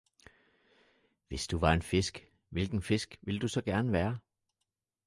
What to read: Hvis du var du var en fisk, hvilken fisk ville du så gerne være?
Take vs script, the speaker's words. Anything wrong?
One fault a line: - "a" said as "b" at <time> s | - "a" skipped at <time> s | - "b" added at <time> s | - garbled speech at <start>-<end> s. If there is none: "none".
- "du var" skipped at 1.7 s